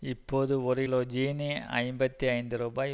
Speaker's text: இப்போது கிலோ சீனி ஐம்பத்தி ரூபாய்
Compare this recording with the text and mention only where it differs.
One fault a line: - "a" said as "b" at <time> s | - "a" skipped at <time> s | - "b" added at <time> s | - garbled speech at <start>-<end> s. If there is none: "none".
- "ஒரு" added at 0.6 s
- "ஐந்து" added at 2.3 s